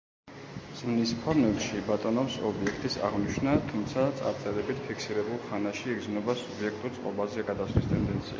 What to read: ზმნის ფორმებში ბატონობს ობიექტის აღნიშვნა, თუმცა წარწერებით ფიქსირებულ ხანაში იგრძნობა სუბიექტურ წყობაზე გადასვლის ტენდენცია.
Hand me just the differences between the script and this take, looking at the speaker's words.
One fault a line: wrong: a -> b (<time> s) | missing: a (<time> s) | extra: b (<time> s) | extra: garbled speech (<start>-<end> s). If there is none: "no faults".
no faults